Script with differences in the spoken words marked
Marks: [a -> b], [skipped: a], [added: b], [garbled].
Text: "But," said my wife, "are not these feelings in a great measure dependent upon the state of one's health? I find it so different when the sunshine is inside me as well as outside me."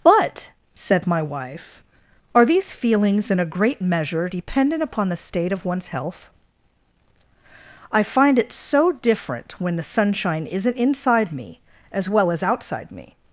"But," said my wife, "are [skipped: not] these feelings in a great measure dependent upon the state of one's health? I find it so different when the sunshine [is -> isn't] inside me as well as outside me."